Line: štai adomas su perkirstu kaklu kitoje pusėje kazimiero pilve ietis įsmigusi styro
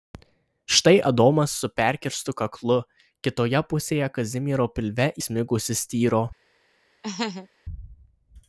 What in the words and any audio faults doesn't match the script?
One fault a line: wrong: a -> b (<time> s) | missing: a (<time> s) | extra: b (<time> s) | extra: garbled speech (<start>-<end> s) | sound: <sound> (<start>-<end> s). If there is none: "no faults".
missing: ietis (5.1 s)
sound: laugh (7.0-7.5 s)